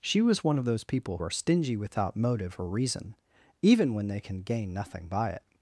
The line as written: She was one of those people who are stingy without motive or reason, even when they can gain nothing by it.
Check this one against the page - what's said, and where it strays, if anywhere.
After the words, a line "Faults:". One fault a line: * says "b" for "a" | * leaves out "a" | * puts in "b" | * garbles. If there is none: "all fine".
She was one of those people are stingy without motive or reason, even when they can gain nothing by it.
Faults:
* leaves out "who"